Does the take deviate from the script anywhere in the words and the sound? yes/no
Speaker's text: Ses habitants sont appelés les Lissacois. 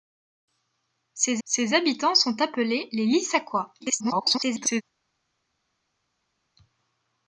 yes